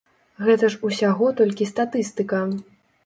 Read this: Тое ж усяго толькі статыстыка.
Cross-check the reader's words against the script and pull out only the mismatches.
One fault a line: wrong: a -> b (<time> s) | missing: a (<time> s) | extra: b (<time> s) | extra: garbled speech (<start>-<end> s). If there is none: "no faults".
wrong: Тое -> Гэта (0.5 s)